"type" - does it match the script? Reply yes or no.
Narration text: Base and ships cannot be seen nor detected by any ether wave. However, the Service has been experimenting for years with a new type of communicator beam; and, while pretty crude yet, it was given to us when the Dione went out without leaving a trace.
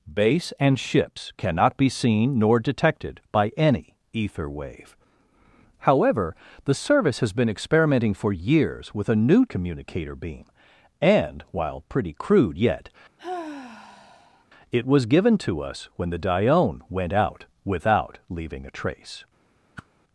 no